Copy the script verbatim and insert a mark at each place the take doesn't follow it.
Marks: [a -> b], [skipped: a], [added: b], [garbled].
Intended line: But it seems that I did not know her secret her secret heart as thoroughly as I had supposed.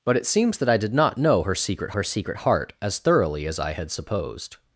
But it seems that I did not know her secret her secret heart as thoroughly as I had supposed.